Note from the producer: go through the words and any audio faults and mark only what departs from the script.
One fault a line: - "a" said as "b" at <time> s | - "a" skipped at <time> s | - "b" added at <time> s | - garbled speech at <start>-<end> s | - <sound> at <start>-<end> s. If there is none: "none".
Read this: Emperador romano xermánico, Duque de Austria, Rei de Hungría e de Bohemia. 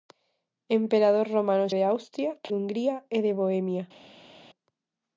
- "xermánico Duque" skipped at 1.7 s
- "Rei" skipped at 2.3 s